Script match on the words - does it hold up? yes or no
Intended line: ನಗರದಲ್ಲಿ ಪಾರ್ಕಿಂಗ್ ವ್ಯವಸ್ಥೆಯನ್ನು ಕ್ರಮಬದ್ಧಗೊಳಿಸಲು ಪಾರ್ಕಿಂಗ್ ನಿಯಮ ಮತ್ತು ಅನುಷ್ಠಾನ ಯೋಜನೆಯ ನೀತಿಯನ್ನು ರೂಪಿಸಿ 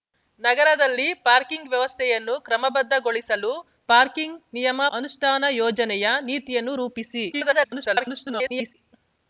no